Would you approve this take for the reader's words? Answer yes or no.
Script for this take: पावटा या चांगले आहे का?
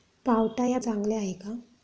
yes